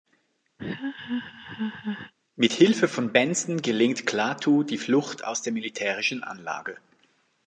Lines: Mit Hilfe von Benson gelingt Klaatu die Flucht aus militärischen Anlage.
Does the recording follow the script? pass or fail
fail